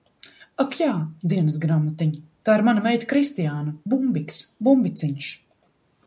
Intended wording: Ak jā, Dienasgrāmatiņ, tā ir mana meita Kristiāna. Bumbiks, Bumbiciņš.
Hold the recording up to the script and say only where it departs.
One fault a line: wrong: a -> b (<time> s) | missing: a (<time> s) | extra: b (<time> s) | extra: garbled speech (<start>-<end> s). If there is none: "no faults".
no faults